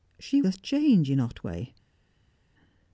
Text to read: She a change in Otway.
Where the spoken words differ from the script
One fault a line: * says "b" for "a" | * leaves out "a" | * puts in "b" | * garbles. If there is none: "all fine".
all fine